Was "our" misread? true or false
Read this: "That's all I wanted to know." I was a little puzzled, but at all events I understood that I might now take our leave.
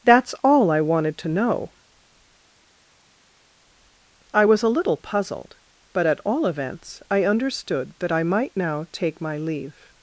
true